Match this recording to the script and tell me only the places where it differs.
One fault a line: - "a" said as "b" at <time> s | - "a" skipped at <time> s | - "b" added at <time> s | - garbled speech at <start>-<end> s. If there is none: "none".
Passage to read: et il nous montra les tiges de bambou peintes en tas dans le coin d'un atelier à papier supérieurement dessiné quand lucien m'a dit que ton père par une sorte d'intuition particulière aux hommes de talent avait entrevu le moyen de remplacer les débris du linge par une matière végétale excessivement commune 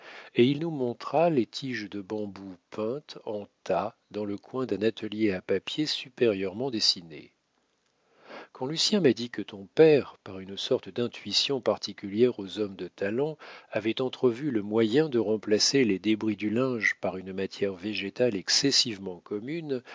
none